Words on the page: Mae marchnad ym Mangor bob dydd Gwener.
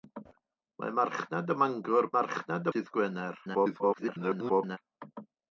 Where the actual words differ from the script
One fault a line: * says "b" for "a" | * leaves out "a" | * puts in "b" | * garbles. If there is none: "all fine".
* says "marchnad" for "bob"
* garbles